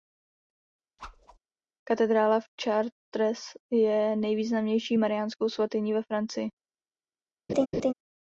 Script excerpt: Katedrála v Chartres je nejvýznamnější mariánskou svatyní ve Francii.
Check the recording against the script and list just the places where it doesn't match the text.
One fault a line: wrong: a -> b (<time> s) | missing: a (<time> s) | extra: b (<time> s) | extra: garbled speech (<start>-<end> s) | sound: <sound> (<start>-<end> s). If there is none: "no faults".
sound: whoosh (1.0-1.4 s)
sound: laugh (7.5-7.9 s)